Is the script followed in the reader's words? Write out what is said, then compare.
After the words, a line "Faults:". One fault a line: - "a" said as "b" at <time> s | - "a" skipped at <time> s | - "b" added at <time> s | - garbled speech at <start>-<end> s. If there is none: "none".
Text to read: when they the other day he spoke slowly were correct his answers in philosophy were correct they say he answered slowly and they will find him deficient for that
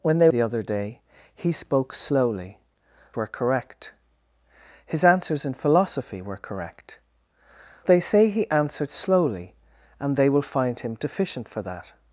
when they the other day he spoke slowly were correct his answers in philosophy were correct they say he answered slowly and they will find him deficient for that
Faults:
none